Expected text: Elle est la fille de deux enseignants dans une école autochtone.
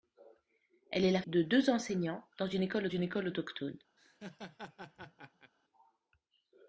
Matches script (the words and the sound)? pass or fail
fail